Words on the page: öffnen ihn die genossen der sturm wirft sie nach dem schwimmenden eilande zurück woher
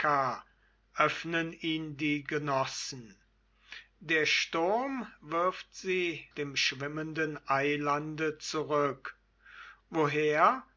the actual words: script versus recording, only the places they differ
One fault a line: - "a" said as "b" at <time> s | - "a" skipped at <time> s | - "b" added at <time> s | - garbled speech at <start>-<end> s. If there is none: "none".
- "nach" skipped at 6.2 s